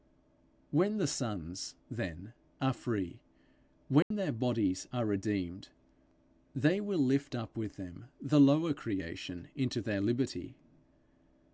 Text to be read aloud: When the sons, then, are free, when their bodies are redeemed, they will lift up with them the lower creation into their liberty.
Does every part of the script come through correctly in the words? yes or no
yes